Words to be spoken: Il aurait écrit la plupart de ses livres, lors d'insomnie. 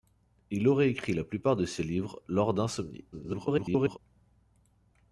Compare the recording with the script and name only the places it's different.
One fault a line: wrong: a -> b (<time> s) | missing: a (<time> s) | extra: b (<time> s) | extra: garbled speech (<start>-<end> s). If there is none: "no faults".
extra: garbled speech (3.1-4.0 s)